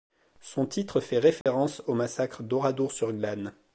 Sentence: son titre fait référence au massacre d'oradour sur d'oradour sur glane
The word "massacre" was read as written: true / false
true